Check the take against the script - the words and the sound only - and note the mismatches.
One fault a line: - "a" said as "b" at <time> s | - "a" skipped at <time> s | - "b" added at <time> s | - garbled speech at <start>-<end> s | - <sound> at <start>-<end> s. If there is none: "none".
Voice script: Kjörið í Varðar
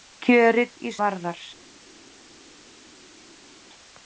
none